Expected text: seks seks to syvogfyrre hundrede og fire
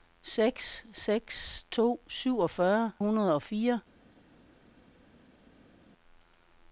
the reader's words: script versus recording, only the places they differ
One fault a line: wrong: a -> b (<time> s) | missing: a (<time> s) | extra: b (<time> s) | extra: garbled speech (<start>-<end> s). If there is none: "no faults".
no faults